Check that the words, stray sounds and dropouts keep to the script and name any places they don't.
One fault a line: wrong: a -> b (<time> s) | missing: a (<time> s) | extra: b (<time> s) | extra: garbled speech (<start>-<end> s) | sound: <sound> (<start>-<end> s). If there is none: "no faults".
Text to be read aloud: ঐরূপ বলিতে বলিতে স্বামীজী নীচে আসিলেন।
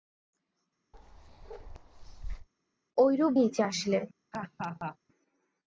sound: bark (0.9-2.5 s)
missing: বলিতে বলিতে স্বামীজী (3.3 s)
sound: laugh (4.3-5.0 s)